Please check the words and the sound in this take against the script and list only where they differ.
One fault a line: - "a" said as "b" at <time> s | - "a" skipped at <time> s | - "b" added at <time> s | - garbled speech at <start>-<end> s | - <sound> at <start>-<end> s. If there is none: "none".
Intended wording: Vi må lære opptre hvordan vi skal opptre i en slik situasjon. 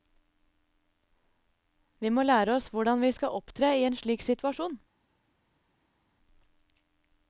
- "opptre" said as "oss" at 2.5 s